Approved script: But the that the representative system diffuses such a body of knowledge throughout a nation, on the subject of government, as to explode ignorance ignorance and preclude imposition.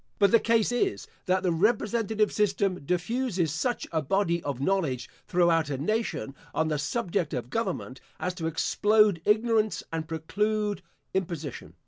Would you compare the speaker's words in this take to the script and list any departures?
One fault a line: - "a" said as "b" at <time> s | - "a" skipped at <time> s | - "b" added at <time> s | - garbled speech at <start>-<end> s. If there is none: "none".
- "case is" added at 0.4 s
- "ignorance" skipped at 9.8 s